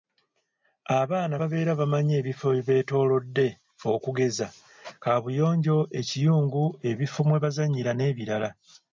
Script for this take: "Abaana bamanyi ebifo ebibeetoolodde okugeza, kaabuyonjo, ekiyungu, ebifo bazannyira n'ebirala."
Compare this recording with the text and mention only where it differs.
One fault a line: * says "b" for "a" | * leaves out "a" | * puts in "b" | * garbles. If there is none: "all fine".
* puts in "babeera"
* puts in "mwe"